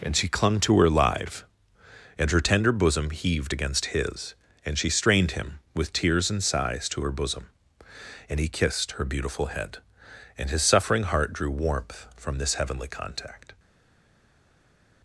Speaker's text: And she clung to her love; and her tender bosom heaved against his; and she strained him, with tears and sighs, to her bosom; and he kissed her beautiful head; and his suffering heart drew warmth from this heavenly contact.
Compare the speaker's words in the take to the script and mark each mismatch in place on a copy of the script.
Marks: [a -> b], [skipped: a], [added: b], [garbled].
And she clung to her [love; -> live] and her tender bosom heaved against his; and she strained him, with tears and sighs, to her bosom; and he kissed her beautiful head; and his suffering heart drew warmth from this heavenly contact.